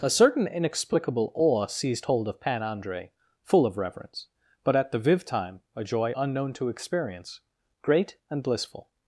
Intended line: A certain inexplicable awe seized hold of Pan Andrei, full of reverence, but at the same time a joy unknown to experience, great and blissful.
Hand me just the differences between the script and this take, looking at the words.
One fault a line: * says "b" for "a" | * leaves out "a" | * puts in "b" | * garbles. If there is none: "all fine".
* says "viv" for "same"